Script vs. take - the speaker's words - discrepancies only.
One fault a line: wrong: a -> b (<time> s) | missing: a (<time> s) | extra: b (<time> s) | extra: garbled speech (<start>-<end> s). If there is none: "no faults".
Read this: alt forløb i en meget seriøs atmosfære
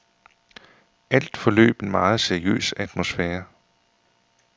missing: i (1.8 s)